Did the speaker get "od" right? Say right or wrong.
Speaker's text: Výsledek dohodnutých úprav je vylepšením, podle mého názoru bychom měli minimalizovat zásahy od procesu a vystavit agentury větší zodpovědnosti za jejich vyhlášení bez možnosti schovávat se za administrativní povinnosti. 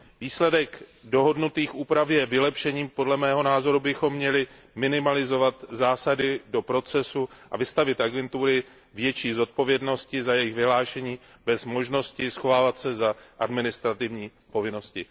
wrong